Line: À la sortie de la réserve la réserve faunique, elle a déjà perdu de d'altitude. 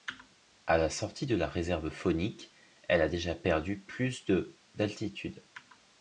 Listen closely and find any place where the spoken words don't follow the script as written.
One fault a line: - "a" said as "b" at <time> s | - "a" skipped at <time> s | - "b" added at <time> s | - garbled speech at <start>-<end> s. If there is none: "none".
- "la réserve" skipped at 1.9 s
- "plus" added at 3.8 s